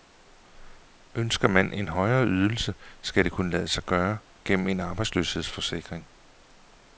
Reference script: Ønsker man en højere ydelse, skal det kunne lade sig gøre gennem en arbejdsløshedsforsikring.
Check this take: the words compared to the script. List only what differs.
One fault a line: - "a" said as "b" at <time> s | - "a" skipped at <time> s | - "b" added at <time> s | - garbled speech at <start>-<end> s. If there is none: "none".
none